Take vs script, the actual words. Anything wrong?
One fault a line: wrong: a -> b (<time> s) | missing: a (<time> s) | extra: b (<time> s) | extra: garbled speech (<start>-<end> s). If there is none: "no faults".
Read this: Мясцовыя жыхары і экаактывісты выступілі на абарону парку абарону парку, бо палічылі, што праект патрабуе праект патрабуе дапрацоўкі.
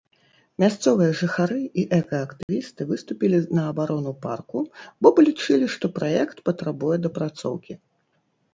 missing: абарону парку (4.6 s)
missing: праект патрабуе (7.0 s)